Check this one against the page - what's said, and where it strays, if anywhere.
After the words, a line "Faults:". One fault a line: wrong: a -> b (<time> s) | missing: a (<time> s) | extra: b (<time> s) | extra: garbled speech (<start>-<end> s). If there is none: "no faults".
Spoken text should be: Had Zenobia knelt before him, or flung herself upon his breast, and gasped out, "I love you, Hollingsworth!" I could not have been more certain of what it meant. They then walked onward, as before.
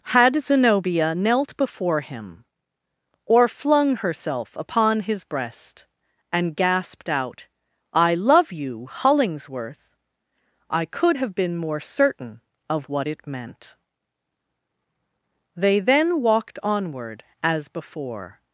Had Zenobia knelt before him, or flung herself upon his breast, and gasped out, "I love you, Hollingsworth!" I could have been more certain of what it meant. They then walked onward, as before.
Faults:
missing: not (11.2 s)